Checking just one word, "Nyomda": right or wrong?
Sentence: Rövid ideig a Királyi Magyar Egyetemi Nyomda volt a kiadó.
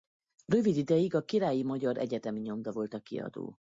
right